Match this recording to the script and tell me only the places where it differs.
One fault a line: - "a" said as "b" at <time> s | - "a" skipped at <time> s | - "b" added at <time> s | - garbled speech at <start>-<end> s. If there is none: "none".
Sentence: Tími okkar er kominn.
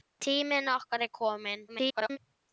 - garbled speech at 1.7-2.2 s